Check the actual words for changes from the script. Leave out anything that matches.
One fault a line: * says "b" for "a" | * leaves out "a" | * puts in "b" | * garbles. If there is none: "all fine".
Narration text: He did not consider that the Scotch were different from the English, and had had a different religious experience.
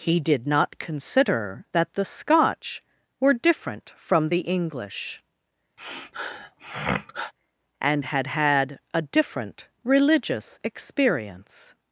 all fine